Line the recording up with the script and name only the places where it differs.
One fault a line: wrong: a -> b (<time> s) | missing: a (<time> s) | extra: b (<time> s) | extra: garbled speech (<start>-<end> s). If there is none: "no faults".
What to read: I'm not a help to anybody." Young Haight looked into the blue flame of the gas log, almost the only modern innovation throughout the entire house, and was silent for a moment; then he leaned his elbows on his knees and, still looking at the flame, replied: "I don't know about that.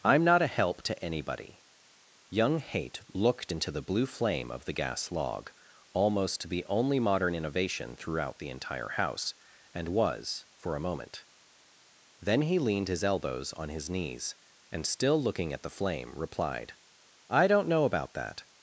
missing: silent (10.5 s)